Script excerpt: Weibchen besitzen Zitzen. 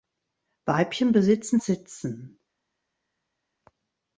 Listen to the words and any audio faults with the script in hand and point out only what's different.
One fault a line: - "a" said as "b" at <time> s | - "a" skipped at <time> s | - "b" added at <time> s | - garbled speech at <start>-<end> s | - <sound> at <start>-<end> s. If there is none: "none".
none